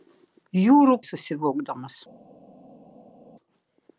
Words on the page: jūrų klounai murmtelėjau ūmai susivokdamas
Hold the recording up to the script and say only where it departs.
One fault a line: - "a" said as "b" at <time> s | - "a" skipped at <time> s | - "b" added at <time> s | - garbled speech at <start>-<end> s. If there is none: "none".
- "klounai murmtelėjau ūmai" skipped at 0.9 s